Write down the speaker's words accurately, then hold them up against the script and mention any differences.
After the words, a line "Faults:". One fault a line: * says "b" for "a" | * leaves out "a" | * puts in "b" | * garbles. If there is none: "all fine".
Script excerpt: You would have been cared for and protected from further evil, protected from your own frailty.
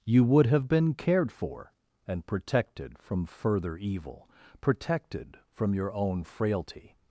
You would have been cared for and protected from further evil, protected from your own frailty.
Faults:
all fine